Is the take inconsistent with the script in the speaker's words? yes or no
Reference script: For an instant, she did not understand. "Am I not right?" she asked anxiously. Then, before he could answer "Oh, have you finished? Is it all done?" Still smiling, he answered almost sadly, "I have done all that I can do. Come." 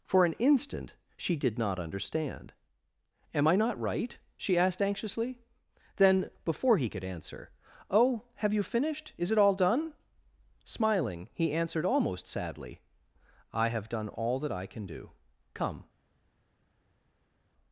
yes